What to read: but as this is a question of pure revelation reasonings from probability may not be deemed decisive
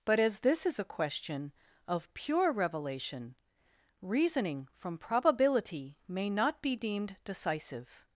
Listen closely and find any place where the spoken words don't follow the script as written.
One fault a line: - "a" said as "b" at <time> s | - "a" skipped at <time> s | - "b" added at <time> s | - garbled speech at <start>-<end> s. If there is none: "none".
- "reasonings" said as "reasoning" at 4.0 s